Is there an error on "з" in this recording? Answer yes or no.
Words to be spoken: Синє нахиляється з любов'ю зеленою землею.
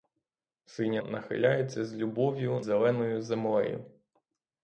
no